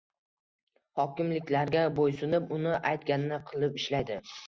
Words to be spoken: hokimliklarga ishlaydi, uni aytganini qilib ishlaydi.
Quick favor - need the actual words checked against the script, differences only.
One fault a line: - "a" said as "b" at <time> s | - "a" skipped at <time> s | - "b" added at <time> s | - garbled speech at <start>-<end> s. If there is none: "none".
- "ishlaydi" said as "bo‘ysunib" at 2.0 s